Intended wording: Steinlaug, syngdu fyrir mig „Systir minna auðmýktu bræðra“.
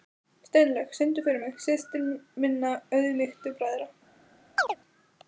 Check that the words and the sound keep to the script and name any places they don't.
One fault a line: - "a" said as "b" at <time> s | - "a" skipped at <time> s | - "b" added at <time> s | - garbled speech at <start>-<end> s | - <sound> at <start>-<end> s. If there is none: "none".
- chirp at 4.6-4.8 s